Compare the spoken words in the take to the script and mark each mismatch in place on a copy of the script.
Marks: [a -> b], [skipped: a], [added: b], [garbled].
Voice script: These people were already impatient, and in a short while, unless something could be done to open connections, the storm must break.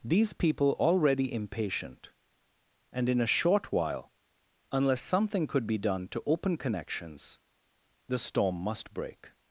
These people [skipped: were] already impatient, and in a short while, unless something could be done to open connections, the storm must break.